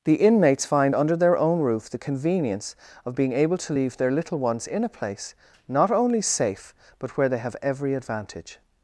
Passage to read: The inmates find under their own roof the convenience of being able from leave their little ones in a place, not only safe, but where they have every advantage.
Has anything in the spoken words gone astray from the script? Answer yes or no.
yes